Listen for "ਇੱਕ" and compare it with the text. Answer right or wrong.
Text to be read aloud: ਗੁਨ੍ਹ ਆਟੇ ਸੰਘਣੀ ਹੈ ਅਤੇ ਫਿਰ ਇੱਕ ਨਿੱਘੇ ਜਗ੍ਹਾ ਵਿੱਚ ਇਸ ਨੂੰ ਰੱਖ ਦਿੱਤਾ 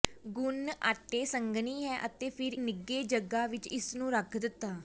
wrong